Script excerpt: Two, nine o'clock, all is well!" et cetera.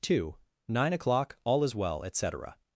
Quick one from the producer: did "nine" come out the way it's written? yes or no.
yes